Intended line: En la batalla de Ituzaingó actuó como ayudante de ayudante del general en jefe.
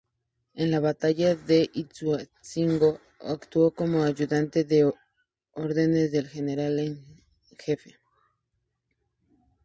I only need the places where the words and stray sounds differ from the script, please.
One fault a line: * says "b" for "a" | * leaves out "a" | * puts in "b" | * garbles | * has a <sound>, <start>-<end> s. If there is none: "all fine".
* says "órdenes" for "ayudante"